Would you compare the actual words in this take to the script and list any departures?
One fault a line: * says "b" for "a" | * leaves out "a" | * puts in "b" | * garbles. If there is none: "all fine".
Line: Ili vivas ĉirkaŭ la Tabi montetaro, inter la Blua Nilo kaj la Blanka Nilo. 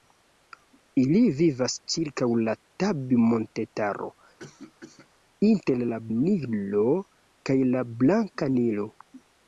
* leaves out "Blua"